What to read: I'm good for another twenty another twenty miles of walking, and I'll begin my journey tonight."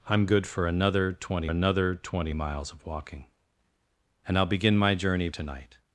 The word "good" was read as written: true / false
true